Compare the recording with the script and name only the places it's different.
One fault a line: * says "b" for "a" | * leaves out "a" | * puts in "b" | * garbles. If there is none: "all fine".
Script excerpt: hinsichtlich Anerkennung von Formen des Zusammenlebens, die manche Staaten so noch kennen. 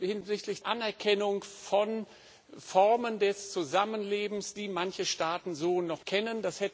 all fine